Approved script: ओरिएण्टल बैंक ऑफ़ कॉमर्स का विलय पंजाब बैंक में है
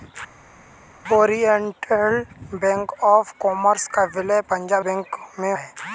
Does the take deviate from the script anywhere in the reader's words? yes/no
no